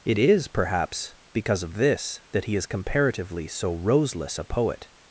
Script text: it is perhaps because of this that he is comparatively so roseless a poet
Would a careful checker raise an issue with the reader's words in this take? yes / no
no